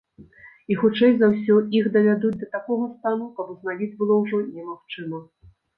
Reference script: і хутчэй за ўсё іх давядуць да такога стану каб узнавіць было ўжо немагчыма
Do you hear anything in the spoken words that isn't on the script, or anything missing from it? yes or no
no